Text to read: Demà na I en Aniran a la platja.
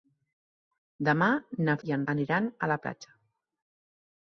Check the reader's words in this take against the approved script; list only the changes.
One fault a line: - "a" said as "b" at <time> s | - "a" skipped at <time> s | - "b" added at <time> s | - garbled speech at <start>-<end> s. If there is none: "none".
none